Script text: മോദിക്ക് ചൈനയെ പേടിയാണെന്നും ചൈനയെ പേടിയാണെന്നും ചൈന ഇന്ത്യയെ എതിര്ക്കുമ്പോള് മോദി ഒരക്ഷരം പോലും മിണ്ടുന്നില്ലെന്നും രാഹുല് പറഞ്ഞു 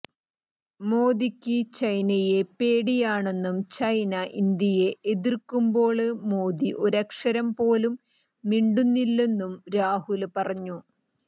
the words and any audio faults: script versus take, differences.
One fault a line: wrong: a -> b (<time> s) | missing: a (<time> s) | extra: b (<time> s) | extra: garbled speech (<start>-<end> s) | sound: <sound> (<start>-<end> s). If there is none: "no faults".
missing: ചൈനയെ പേടിയാണെന്നും (3.6 s)